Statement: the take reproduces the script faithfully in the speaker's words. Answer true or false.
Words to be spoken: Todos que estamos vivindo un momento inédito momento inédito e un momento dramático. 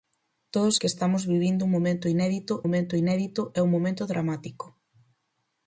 true